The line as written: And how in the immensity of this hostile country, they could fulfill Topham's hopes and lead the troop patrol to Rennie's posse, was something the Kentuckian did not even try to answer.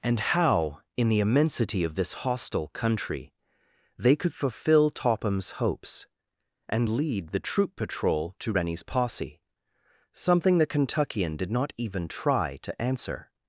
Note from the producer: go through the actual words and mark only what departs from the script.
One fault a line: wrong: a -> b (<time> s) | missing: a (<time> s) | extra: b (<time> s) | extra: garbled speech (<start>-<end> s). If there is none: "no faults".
missing: was (9.4 s)